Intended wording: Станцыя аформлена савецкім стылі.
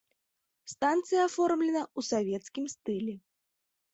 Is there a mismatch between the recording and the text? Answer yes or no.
yes